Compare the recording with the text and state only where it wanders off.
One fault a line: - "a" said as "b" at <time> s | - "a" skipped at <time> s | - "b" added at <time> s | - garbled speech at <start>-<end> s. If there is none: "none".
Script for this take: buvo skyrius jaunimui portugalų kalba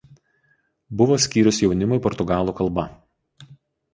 none